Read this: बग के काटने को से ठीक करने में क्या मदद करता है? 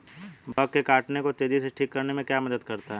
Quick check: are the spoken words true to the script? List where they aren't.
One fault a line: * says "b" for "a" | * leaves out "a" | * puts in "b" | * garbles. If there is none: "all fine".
* puts in "तेजी"